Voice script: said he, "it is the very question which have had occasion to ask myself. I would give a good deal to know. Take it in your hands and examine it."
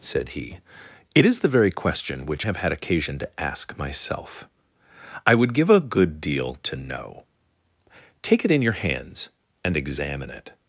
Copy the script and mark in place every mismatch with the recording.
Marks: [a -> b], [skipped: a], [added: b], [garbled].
said he, "it is the very question which have had occasion to ask myself. I would give a good deal to know. Take it in your hands and examine it."